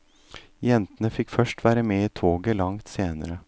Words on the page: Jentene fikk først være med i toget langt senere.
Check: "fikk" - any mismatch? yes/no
no